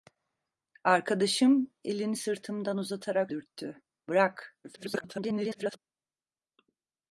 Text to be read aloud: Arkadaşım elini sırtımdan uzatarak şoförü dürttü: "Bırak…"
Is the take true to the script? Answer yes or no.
no